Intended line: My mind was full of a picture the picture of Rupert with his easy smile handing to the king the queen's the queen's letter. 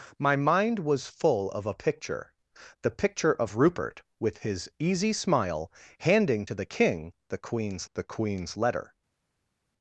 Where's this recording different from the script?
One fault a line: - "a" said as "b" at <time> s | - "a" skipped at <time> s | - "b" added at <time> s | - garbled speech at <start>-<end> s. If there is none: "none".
none